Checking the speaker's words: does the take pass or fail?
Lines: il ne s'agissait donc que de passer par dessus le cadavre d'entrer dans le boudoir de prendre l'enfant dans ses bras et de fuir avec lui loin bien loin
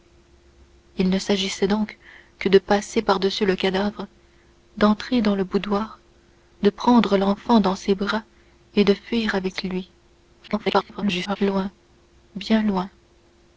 fail